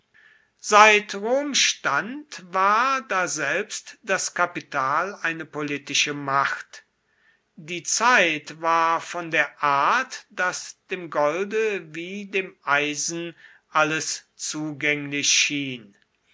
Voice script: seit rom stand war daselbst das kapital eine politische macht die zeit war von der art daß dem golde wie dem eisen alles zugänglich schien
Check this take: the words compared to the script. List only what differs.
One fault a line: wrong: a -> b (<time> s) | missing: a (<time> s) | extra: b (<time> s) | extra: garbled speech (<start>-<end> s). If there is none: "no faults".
no faults